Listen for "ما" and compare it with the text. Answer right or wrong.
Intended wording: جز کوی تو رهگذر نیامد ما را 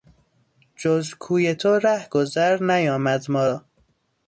right